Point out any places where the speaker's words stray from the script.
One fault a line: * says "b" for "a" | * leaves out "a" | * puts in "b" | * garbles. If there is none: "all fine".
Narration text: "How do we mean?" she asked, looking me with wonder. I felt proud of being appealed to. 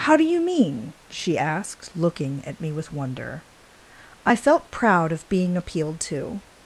* says "you" for "we"
* puts in "at"